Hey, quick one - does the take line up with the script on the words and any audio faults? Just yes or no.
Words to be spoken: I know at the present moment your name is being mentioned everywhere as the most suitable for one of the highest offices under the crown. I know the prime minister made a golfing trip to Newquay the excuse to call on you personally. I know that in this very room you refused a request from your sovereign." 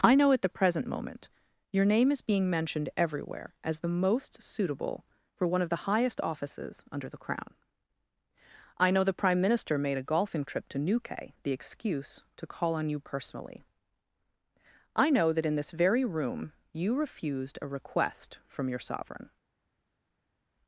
yes